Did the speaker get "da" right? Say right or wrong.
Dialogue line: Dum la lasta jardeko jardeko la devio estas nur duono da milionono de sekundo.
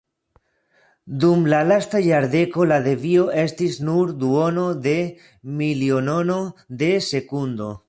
wrong